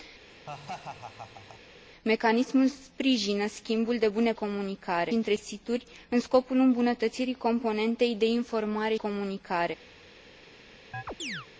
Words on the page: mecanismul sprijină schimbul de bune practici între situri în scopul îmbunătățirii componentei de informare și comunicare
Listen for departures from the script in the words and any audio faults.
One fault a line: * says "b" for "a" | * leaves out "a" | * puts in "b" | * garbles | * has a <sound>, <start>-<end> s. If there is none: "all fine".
* has a laugh, 0.3-1.6 s
* says "comunicare" for "practici"
* leaves out "și"
* has a chirp, 10.9-11.5 s